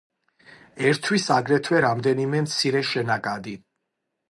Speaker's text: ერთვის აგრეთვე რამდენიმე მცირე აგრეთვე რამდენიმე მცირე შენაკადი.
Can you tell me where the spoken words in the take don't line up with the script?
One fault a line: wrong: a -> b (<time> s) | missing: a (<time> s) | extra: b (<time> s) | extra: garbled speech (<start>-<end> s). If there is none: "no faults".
missing: აგრეთვე რამდენიმე მცირე (2.8 s)